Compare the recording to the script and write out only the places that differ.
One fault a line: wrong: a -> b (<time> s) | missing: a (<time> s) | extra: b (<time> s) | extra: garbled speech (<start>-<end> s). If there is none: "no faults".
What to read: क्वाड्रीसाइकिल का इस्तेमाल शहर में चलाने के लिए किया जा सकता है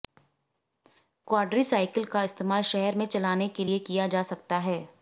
no faults